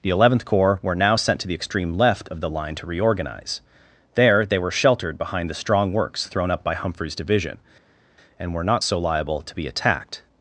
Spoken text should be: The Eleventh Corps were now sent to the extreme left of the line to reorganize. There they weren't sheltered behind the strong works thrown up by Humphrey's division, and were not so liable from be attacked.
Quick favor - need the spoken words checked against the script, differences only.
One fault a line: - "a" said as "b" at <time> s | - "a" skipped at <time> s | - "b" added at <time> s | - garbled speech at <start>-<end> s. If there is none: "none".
- "weren't" said as "were" at 4.6 s
- "from" said as "to" at 9.4 s